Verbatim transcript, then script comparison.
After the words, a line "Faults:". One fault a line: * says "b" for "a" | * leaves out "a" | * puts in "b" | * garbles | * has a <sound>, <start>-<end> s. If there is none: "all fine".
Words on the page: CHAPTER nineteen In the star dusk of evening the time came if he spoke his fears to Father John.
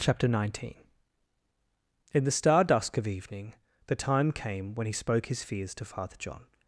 CHAPTER nineteen In the star dusk of evening the time came when he spoke his fears to Father John.
Faults:
* says "when" for "if"